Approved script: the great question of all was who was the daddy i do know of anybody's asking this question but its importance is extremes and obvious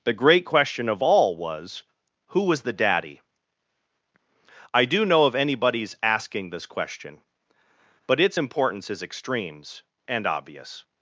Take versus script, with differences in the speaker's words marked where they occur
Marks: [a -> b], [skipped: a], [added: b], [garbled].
the great question of all was who was the daddy i do know of anybody's asking this question but its importance is extremes and obvious